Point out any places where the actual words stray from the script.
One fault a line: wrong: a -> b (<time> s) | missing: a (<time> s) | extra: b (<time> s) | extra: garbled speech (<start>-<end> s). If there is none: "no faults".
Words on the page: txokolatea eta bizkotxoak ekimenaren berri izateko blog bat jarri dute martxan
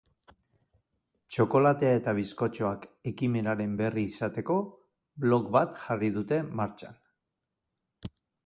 no faults